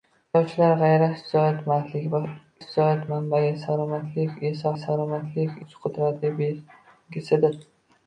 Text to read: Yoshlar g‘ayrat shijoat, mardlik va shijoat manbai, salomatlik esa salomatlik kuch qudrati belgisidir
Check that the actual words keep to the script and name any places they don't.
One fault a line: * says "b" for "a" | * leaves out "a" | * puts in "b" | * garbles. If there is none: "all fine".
all fine